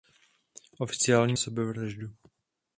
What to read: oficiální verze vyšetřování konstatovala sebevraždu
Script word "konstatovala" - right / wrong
wrong